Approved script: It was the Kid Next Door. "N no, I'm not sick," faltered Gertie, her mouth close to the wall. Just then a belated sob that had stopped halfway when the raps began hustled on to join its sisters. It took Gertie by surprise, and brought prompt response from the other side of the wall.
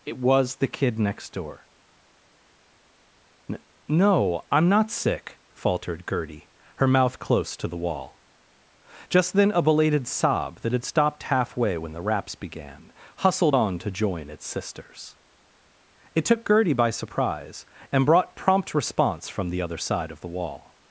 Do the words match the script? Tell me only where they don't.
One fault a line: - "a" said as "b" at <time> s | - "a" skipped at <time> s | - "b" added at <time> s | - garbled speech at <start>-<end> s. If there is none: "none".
none